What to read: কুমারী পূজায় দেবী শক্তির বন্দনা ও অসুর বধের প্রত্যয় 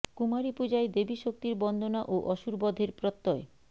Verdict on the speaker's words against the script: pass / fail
pass